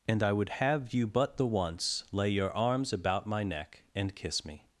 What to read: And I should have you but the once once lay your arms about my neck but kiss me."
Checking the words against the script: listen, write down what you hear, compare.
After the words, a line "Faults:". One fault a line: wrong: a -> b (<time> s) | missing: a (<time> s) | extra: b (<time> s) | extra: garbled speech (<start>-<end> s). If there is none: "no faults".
And I would have you but the once lay your arms about my neck and kiss me."
Faults:
wrong: should -> would (0.3 s)
missing: once (2.0 s)
wrong: but -> and (3.9 s)